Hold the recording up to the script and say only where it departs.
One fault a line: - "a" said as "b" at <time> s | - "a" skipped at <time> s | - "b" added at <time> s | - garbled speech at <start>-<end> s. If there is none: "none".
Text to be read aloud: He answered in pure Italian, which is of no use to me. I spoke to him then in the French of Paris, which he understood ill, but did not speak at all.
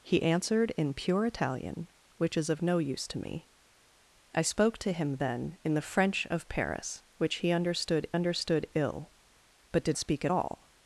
- "understood" added at 8.1 s
- "not" skipped at 10.0 s